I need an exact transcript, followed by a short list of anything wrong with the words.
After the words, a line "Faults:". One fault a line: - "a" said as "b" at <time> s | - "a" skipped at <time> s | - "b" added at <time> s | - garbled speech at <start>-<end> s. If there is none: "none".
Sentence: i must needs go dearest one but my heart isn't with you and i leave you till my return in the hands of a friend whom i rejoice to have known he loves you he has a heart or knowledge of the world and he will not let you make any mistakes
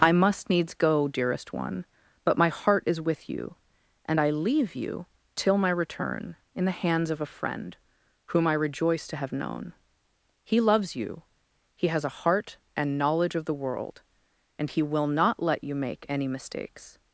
i must needs go dearest one but my heart is with you and i leave you till my return in the hands of a friend whom i rejoice to have known he loves you he has a heart and knowledge of the world and he will not let you make any mistakes
Faults:
- "isn't" said as "is" at 2.9 s
- "or" said as "and" at 12.8 s